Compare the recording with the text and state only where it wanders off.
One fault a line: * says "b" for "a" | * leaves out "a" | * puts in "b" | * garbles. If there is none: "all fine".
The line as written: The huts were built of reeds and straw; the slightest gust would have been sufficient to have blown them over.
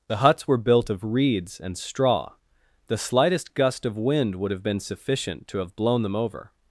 * puts in "of wind"